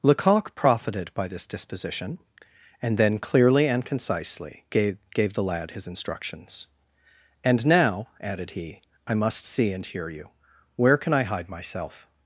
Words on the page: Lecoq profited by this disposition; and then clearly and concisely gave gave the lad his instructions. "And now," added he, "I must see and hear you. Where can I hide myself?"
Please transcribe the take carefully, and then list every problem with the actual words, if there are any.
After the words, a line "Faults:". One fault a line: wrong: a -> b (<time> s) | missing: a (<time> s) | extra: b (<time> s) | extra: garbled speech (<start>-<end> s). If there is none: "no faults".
Lecoq profited by this disposition; and then clearly and concisely gave gave the lad his instructions. "And now," added he, "I must see and hear you. Where can I hide myself?"
Faults:
no faults